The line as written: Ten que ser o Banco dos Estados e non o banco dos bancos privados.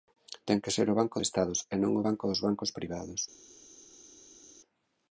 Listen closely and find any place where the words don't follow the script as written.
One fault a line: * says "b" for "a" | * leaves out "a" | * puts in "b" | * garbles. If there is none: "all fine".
* leaves out "dos"